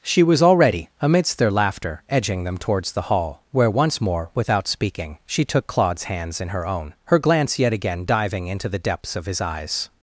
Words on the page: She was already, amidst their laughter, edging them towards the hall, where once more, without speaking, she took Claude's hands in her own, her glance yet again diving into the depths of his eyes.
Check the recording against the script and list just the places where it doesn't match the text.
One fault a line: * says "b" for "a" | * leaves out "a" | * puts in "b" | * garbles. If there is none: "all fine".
all fine